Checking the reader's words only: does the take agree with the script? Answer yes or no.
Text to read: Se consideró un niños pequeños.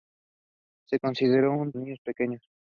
yes